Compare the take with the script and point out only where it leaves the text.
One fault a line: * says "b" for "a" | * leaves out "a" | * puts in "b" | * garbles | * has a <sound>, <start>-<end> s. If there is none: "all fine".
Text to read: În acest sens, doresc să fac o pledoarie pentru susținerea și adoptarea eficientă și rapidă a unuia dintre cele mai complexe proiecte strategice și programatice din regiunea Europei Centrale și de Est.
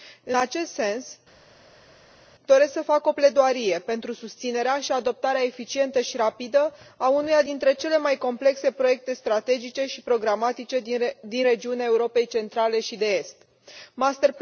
all fine